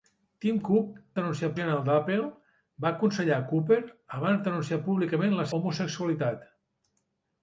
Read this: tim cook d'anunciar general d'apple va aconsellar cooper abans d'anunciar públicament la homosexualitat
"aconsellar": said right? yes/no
yes